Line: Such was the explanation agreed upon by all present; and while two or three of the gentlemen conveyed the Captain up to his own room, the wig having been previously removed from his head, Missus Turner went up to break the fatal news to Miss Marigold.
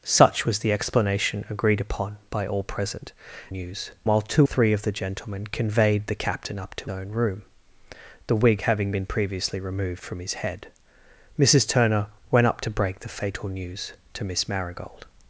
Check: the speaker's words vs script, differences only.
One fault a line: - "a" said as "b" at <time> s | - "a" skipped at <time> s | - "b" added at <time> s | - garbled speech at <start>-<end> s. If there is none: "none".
- "and" said as "news" at 3.5 s
- "or" skipped at 4.5 s
- "his" skipped at 6.9 s